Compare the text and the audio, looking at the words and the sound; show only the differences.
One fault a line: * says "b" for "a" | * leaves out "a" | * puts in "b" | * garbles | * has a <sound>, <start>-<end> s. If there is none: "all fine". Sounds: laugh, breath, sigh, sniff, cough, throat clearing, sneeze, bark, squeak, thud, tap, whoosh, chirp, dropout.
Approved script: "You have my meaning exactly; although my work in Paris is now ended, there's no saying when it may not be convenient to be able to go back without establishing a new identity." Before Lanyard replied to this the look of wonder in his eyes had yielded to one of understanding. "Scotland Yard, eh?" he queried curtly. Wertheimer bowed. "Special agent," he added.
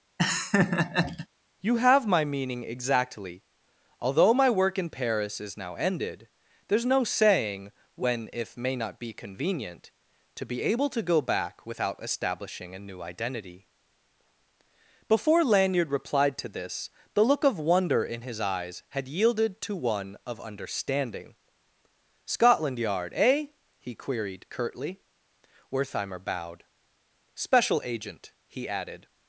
* has a laugh, 0.2-1.3 s
* says "if" for "it"